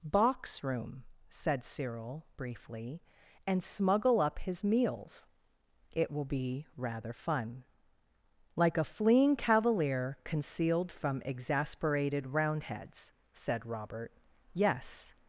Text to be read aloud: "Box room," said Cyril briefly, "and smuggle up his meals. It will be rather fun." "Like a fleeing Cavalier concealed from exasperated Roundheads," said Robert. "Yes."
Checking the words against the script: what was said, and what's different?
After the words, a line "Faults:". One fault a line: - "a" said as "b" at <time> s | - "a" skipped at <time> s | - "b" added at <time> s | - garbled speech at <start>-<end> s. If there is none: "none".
"Box room," said Cyril briefly, "and smuggle up his meals. It will be rather fun." "Like a fleeing Cavalier concealed from exasperated Roundheads," said Robert. "Yes."
Faults:
none